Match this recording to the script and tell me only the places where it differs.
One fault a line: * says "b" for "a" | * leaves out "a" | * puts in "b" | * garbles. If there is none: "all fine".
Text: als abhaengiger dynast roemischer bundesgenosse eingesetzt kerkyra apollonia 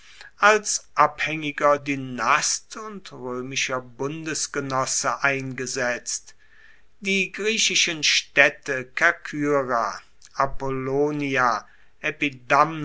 * puts in "und"
* puts in "die griechischen staedte"